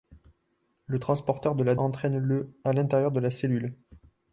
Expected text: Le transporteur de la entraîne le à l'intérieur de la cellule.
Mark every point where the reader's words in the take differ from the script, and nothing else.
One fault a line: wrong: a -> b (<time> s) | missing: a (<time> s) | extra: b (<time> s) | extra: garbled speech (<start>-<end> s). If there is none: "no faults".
no faults